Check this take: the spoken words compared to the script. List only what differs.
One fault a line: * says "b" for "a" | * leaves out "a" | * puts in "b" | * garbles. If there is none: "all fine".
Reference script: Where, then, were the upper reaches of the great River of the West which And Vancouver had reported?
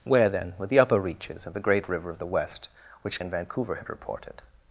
all fine